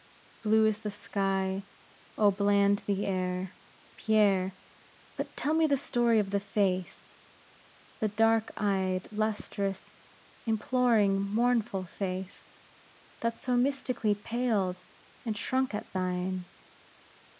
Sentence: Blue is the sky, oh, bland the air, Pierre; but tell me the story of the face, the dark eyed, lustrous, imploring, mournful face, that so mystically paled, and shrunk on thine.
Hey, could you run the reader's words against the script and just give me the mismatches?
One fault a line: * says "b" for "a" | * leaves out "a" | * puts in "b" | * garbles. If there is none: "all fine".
* says "at" for "on"